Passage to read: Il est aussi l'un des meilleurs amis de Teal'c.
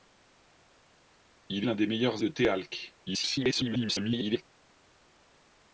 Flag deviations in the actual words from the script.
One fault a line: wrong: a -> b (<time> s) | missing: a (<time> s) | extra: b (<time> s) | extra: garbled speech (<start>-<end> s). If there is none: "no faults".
missing: est aussi (1.7 s)
missing: amis (2.3 s)
extra: garbled speech (3.1-4.4 s)